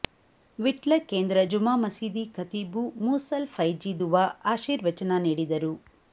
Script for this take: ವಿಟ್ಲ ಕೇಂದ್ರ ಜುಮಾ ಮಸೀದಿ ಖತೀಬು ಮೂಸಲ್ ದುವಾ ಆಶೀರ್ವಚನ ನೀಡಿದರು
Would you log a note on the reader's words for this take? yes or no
yes